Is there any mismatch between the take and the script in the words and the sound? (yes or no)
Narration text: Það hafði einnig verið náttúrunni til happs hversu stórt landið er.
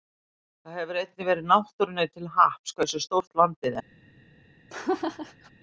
yes